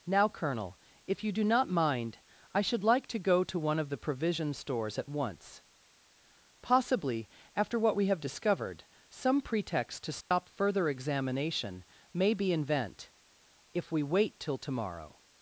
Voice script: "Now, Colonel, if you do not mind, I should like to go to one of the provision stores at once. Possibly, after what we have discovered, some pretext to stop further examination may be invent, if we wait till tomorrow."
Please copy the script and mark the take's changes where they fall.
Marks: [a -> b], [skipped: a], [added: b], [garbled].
"Now, Colonel, if you do not mind, I should like to go to one of the provision stores at once. Possibly, after what we have discovered, some pretext to stop further examination may be invent, if we wait till tomorrow."